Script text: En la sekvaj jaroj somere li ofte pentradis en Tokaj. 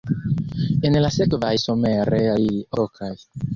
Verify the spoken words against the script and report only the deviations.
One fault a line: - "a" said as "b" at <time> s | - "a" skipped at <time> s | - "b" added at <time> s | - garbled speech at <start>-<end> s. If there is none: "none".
- "jaroj" skipped at 1.5 s
- "ofte pentradis en" skipped at 2.5 s